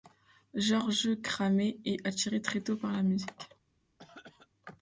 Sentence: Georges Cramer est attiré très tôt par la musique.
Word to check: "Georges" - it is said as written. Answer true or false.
true